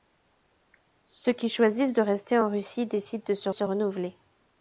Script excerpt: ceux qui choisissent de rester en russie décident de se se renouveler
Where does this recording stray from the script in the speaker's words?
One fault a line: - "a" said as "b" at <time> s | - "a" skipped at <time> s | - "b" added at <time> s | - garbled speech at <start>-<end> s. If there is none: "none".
none